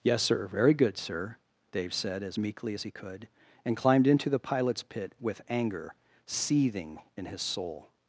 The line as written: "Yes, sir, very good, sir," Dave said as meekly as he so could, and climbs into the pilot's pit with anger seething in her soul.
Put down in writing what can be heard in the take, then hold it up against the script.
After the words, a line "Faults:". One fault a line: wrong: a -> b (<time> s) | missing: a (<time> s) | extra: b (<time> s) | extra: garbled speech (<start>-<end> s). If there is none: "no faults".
"Yes, sir, very good, sir," Dave said as meekly as he could, and climbed into the pilot's pit with anger seething in his soul.
Faults:
missing: so (2.9 s)
wrong: climbs -> climbed (3.8 s)
wrong: her -> his (7.3 s)